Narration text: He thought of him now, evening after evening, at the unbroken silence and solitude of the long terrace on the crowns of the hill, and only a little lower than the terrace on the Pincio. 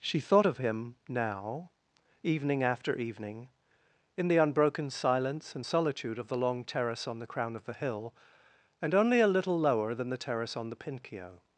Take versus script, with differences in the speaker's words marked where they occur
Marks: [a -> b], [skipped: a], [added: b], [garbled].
[He -> She] thought of him now, evening after evening, [at -> in] the unbroken silence and solitude of the long terrace on the [crowns -> crown] of the hill, and only a little lower than the terrace on the Pincio.